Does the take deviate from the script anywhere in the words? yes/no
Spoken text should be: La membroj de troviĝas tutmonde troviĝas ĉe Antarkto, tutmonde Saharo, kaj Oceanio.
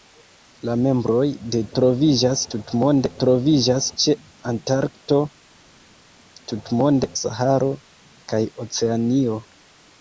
no